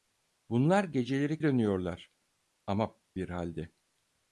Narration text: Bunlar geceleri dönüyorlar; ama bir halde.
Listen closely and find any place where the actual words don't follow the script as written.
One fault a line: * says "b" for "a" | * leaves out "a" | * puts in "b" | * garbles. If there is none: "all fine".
all fine